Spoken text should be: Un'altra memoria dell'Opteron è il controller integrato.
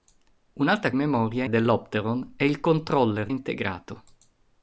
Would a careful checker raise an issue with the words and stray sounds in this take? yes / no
no